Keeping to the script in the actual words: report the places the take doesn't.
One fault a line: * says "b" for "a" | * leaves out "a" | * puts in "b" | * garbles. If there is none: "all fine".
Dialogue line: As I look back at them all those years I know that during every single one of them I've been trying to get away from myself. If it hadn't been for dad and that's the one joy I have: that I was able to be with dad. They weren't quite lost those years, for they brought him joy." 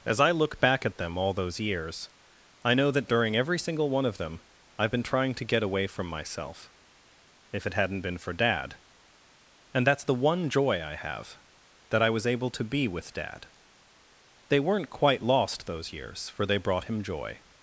all fine